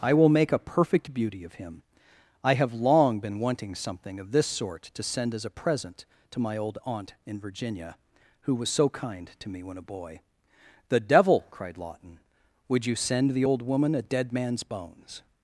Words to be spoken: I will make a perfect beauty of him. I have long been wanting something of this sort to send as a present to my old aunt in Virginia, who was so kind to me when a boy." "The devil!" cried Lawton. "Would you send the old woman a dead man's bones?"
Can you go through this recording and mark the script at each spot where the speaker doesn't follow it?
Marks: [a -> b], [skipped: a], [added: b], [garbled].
I will make a perfect beauty of him. I have long been wanting something of this sort to send as a present to my old aunt in Virginia, who was so kind to me when a boy." "The devil!" cried Lawton. "Would you send the old woman a dead man's bones?"